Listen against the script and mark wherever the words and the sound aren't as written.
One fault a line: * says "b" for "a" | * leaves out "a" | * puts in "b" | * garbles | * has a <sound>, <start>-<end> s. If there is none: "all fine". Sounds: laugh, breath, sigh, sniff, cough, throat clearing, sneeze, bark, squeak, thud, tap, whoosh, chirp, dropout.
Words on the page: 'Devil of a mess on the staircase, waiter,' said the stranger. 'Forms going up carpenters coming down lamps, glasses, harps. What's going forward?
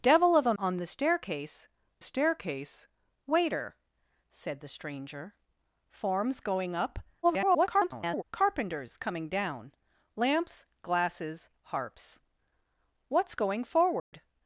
* leaves out "mess"
* puts in "staircase"
* garbles
* has a dropout, 14.0-14.1 s